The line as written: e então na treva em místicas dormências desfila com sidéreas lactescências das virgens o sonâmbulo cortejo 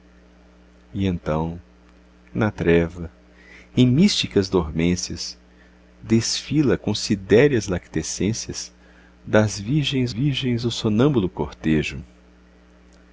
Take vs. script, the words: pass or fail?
fail